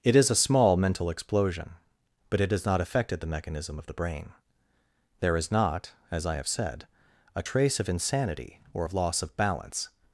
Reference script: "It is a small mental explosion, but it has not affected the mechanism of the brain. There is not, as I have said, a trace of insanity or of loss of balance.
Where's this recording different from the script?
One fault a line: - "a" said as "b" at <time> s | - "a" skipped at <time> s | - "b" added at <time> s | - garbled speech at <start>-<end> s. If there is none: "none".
none